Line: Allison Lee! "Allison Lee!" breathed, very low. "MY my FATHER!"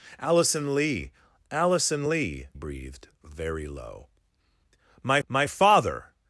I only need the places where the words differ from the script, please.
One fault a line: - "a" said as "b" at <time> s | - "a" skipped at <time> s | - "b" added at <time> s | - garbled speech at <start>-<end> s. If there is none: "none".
none